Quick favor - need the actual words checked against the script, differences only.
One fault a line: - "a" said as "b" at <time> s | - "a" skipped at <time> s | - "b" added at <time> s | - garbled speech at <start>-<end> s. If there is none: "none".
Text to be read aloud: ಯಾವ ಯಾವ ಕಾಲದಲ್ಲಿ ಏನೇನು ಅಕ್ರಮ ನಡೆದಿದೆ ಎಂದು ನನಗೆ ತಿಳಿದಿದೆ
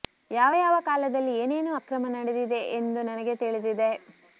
none